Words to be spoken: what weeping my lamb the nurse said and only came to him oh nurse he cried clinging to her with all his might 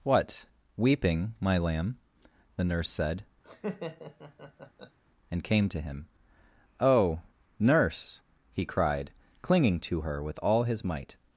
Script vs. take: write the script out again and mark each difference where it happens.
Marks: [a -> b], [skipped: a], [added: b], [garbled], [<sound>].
what weeping my lamb the nurse said [laugh] and [skipped: only] came to him oh nurse he cried clinging to her with all his might